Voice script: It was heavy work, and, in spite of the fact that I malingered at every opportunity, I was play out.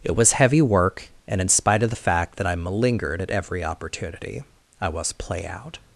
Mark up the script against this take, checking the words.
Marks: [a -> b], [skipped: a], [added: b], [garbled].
It was heavy work, and, in spite of the fact that I malingered at every opportunity, I was play out.